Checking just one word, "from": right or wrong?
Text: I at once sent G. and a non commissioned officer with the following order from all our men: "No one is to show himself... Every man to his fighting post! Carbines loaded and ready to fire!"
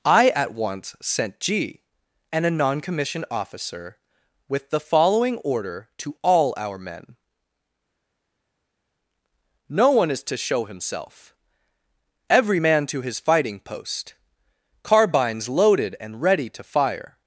wrong